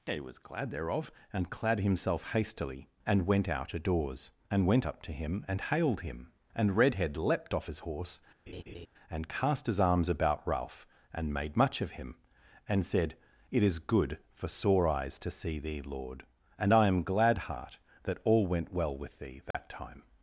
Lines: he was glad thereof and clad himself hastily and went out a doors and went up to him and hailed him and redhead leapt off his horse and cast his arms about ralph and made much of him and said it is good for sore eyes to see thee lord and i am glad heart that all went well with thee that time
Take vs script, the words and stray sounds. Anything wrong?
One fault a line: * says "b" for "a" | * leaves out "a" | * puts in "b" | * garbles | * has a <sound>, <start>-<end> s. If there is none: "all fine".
* has a laugh, 8.5-8.9 s
* has a dropout, 19.5-19.5 s